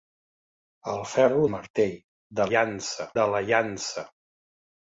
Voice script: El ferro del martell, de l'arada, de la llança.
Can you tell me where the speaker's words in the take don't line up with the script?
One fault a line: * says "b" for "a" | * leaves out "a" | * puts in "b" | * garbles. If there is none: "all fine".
* leaves out "del"
* says "llança" for "l'arada"